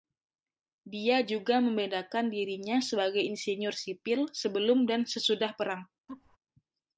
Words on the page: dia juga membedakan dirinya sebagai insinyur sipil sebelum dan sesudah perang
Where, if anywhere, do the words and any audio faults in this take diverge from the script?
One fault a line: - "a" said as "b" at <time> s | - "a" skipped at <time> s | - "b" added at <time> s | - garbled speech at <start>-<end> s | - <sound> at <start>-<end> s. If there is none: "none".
- laugh at 6.1-6.4 s